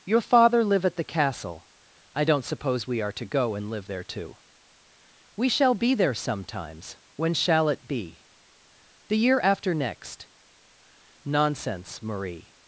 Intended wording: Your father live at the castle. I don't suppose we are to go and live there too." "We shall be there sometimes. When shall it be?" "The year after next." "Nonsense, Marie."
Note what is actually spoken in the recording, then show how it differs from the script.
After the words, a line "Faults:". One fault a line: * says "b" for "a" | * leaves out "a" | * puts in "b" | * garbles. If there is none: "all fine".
Your father live at the castle. I don't suppose we are to go and live there too." "We shall be there sometimes. When shall it be?" "The year after next." "Nonsense, Marie."
Faults:
all fine